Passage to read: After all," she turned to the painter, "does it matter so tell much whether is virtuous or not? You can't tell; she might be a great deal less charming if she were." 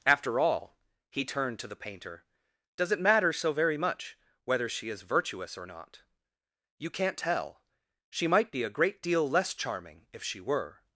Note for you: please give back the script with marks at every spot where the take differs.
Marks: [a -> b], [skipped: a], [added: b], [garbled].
After all," [she -> he] turned to the painter, "does it matter so [tell -> very] much whether [added: she] is virtuous or not? You can't tell; she might be a great deal less charming if she were."